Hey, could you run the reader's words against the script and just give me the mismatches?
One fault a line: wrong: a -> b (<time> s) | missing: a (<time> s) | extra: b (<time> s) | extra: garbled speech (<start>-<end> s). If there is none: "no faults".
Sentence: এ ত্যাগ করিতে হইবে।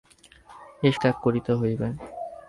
no faults